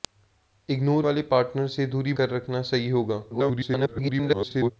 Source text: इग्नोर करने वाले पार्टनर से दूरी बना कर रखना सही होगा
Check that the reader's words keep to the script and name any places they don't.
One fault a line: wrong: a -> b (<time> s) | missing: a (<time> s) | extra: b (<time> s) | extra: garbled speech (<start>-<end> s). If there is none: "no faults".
missing: करने (1.0 s)
missing: बना (2.1 s)
extra: garbled speech (3.3-4.7 s)